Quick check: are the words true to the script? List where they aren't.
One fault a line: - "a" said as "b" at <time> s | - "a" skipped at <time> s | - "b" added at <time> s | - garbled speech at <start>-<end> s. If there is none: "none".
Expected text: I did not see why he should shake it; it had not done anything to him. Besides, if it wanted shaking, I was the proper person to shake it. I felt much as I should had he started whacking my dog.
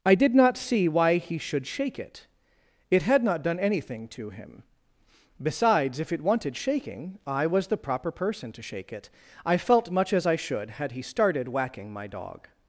none